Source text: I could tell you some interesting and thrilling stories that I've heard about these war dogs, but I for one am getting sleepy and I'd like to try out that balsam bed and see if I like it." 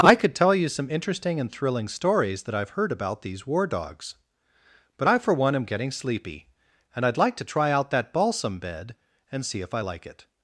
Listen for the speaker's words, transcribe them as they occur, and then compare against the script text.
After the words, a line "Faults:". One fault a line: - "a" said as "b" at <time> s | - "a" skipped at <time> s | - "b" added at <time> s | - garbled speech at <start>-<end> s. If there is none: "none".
I could tell you some interesting and thrilling stories that I've heard about these war dogs, but I for one am getting sleepy and I'd like to try out that balsam bed and see if I like it."
Faults:
none